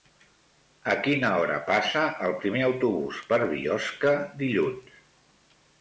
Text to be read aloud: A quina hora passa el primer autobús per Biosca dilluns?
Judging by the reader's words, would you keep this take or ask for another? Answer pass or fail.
pass